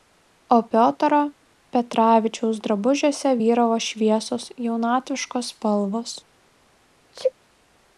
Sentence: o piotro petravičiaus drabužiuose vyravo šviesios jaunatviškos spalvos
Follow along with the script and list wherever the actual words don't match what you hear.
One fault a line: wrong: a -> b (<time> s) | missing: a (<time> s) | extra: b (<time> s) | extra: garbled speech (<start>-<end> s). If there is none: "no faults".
no faults